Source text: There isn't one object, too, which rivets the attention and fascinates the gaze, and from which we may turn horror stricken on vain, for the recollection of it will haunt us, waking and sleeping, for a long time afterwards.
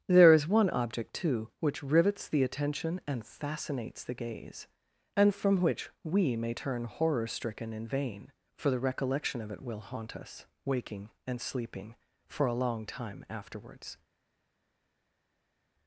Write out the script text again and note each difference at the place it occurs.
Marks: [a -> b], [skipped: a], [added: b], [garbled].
There [isn't -> is] one object, too, which rivets the attention and fascinates the gaze, and from which we may turn horror stricken [on -> in] vain, for the recollection of it will haunt us, waking and sleeping, for a long time afterwards.